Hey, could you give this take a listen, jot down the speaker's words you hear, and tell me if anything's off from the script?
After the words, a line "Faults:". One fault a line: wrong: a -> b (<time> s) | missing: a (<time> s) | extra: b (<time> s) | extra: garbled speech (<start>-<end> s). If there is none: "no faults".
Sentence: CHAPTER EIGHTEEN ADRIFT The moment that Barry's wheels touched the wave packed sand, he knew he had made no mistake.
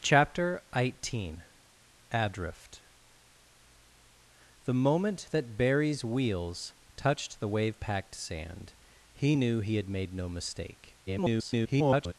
CHAPTER EIGHTEEN ADRIFT The moment that Barry's wheels touched the wave packed sand, he knew he had made no mistake. [garbled]
Faults:
extra: garbled speech (11.1-12.1 s)